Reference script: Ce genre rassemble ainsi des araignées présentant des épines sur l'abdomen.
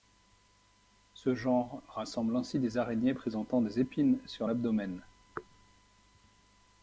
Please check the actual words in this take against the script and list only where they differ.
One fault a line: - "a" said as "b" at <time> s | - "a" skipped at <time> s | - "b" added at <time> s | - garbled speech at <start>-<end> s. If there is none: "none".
none